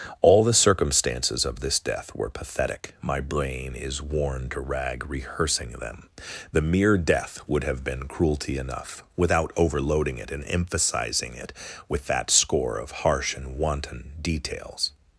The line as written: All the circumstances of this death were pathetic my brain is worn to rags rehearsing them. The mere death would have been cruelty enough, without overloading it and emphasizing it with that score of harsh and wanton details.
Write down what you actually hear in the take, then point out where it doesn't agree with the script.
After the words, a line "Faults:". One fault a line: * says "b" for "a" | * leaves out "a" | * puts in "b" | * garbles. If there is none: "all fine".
All the circumstances of this death were pathetic my brain is worn to rag rehearsing them. The mere death would have been cruelty enough, without overloading it and emphasizing it with that score of harsh and wanton details.
Faults:
* says "rag" for "rags"